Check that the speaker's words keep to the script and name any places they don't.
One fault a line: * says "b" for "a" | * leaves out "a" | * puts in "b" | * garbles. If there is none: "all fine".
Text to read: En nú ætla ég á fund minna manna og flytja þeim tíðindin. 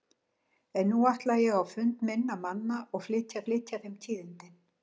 * puts in "flytja"